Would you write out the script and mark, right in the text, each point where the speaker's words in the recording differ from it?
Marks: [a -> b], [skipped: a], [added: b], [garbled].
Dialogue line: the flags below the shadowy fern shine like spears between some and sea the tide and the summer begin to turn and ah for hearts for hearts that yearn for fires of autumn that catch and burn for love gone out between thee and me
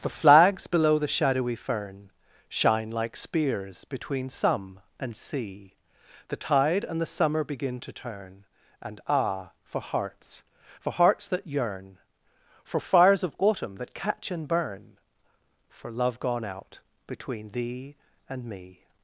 the flags below the shadowy fern shine like spears between some and sea the tide and the summer begin to turn and ah for hearts for hearts that yearn for fires of autumn that catch and burn for love gone out between thee and me